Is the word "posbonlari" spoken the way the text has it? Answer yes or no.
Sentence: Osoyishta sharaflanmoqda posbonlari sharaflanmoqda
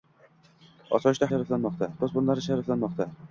yes